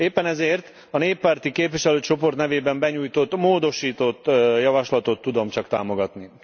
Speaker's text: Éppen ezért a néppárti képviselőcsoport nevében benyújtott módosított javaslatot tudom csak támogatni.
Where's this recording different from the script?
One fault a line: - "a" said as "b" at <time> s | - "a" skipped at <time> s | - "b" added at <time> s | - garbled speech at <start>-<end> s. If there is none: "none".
none